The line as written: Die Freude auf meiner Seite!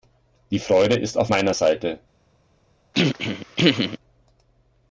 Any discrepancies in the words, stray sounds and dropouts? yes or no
yes